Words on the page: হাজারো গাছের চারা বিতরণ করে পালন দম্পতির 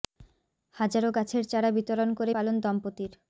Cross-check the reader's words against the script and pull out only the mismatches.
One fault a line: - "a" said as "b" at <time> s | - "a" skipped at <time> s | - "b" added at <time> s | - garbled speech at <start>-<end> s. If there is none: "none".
none